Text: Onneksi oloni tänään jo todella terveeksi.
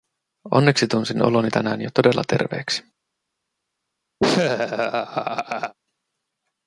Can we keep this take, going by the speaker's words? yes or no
no